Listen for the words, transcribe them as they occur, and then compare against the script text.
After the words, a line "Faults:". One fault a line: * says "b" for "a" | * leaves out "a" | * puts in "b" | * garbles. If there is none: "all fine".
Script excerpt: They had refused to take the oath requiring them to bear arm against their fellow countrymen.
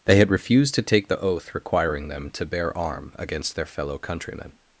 They had refused to take the oath requiring them to bear arm against their fellow countrymen.
Faults:
all fine